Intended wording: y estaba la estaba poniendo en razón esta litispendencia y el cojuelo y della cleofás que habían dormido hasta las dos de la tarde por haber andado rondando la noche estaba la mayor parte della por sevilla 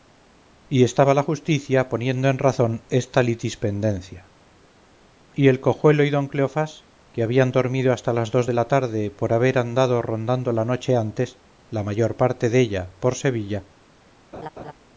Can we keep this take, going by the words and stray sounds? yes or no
no